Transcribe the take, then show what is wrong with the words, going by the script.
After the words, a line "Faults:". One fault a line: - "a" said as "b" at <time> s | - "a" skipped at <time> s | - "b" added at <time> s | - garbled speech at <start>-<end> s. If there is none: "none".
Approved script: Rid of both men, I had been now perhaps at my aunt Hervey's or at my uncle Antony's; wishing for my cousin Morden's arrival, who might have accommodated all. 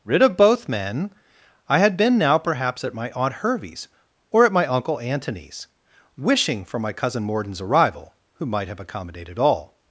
Rid of both men, I had been now perhaps at my aunt Hervey's or at my uncle Antony's; wishing for my cousin Morden's arrival, who might have accommodated all.
Faults:
none